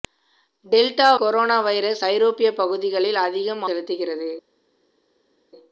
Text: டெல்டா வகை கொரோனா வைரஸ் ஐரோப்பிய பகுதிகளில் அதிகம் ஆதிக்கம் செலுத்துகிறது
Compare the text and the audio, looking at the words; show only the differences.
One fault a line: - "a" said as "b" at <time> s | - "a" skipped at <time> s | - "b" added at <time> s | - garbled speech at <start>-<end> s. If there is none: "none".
- "வகை" skipped at 1.1 s
- "ஆதிக்கம்" skipped at 3.6 s